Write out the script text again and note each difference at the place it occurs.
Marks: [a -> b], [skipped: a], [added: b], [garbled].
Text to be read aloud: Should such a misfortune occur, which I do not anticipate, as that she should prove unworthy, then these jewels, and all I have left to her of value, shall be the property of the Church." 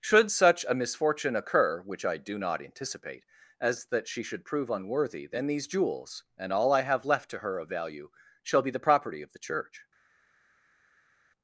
Should such a misfortune occur, which I do not anticipate, as that she should prove unworthy, then these jewels, and all I have left to her of value, shall be the property of the Church."